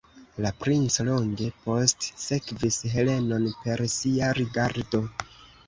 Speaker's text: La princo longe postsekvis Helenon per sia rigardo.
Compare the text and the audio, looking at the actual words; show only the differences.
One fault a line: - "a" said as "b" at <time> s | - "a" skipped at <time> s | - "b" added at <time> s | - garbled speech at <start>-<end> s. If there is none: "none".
none